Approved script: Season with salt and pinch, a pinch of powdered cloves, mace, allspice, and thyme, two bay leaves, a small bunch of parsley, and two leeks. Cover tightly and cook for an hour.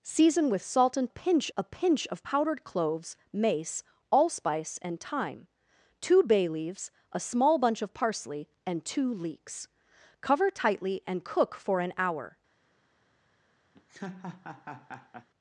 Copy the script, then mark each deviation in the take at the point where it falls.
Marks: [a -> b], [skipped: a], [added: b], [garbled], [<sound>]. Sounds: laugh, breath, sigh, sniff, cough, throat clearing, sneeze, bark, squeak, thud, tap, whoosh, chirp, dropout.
Season with salt and pinch, a pinch of powdered cloves, mace, allspice, and thyme, two bay leaves, a small bunch of parsley, and two leeks. Cover tightly and cook for an hour. [laugh]